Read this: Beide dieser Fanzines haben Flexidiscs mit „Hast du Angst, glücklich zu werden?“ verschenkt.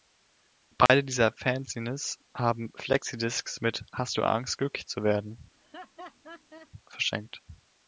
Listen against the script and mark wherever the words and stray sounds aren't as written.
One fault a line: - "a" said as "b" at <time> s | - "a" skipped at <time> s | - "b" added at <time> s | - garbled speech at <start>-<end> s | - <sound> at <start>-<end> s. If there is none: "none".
- dropout at 0.9-0.9 s
- laugh at 5.5-6.7 s